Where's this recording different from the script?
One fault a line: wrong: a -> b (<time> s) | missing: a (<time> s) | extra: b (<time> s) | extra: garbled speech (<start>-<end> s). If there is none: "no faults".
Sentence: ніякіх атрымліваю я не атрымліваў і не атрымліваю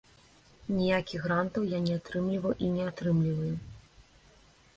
wrong: атрымліваю -> грантаў (1.3 s)